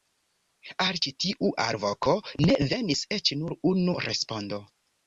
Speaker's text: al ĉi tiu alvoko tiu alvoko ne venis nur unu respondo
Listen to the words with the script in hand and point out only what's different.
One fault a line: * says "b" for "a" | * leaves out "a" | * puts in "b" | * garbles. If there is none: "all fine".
* leaves out "tiu alvoko"
* puts in "eĉ"